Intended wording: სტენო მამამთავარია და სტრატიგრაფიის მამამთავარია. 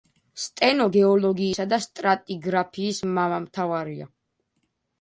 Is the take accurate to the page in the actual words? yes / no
no